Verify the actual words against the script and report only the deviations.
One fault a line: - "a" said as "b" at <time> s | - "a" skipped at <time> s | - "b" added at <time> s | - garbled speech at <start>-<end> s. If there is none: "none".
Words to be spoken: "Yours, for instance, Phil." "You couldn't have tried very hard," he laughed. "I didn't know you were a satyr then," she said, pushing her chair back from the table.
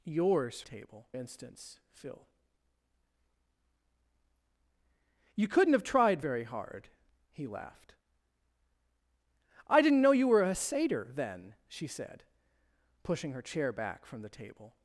- "for" said as "table" at 0.6 s